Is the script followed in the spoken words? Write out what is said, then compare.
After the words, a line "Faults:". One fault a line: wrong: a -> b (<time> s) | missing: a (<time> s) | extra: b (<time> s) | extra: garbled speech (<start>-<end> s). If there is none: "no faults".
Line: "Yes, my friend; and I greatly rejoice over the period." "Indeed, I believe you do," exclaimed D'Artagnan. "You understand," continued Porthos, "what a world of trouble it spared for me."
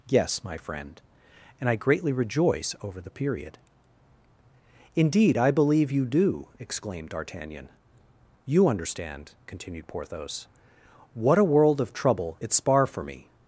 "Yes, my friend; and I greatly rejoice over the period." "Indeed, I believe you do," exclaimed D'Artagnan. "You understand," continued Porthos, "what a world of trouble it spar for me."
Faults:
wrong: spared -> spar (12.5 s)